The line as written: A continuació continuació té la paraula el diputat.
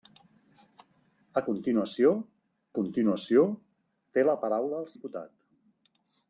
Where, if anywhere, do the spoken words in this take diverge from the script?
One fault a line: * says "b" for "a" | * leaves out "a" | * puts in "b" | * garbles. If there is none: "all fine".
all fine